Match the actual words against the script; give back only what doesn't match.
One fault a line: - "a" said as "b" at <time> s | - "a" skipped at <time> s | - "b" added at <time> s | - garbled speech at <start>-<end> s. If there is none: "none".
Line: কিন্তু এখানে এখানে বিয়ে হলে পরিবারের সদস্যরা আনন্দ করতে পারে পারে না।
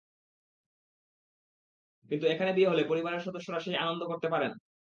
- "এখানে" skipped at 2.5 s
- "সেই" added at 3.6 s
- "পারে" skipped at 4.5 s